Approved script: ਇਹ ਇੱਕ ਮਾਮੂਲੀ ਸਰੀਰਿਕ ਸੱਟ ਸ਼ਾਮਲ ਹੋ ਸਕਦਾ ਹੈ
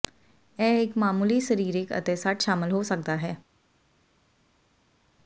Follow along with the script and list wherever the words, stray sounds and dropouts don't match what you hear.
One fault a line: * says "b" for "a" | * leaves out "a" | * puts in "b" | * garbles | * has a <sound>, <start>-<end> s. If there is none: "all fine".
* puts in "ਅਤੇ"